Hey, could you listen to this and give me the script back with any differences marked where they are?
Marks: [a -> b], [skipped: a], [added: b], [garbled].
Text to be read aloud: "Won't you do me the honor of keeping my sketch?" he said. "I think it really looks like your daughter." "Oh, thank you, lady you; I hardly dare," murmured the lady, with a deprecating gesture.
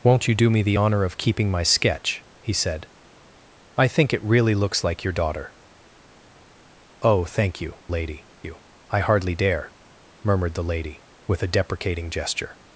"Won't you do me the honor of keeping my sketch?" he said. "I think it really looks like your daughter." "Oh, thank you, lady you; I hardly dare," murmured the lady, with a deprecating gesture.